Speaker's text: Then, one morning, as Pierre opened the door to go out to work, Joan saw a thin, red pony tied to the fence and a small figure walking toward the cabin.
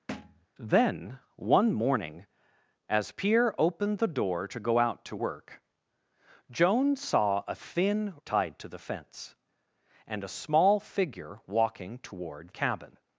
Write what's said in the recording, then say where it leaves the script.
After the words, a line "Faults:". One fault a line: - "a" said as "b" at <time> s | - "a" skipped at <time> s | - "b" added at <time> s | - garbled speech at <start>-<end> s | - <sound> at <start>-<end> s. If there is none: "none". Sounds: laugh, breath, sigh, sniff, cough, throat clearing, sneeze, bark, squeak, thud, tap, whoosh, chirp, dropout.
Then, one morning, as Pierre opened the door to go out to work, Joan saw a thin, tied to the fence and a small figure walking toward cabin.
Faults:
- thud at 0.1-0.5 s
- "red pony" skipped at 8.1 s
- "the" skipped at 12.5 s